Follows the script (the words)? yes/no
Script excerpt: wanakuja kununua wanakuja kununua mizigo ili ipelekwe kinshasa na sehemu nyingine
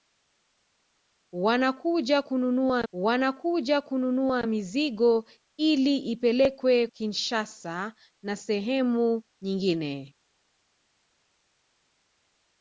yes